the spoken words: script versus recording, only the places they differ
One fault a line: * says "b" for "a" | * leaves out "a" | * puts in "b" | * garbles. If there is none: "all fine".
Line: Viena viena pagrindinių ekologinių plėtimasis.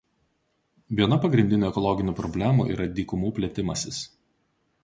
* leaves out "viena"
* puts in "problemų yra dykumų"